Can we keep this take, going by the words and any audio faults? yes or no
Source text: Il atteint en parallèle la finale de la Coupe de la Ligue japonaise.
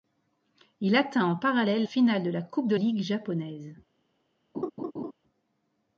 no